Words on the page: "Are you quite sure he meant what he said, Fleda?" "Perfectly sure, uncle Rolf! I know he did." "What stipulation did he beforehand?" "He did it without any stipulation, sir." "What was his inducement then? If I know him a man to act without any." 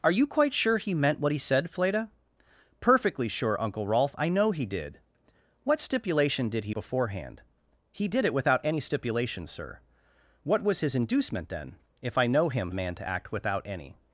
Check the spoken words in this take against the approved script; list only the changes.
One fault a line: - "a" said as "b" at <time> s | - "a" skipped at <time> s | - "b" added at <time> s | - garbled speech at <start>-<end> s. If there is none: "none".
none